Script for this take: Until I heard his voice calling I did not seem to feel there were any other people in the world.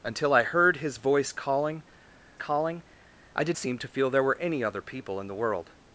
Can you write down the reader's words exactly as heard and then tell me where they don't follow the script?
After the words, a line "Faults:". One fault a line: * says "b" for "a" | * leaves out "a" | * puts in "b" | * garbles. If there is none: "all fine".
Until I heard his voice calling calling I did seem to feel there were any other people in the world.
Faults:
* puts in "calling"
* leaves out "not"